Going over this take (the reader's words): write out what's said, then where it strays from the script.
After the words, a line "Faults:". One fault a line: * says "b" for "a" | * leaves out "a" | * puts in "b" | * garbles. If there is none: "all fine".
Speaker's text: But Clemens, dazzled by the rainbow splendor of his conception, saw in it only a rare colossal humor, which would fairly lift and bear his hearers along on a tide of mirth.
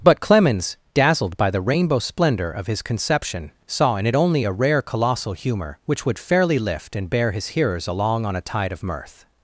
But Clemens, dazzled by the rainbow splendor of his conception, saw in it only a rare colossal humor, which would fairly lift and bear his hearers along on a tide of mirth.
Faults:
all fine